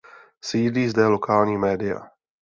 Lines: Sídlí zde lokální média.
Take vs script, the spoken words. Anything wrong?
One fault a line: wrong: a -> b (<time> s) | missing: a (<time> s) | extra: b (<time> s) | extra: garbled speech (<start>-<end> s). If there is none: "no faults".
no faults